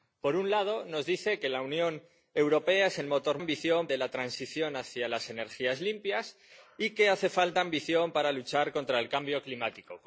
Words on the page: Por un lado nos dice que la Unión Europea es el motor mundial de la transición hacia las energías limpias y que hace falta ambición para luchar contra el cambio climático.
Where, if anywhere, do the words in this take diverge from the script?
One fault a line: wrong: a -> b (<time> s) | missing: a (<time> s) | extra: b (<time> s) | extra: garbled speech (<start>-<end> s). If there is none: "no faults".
wrong: mundial -> ambición (3.4 s)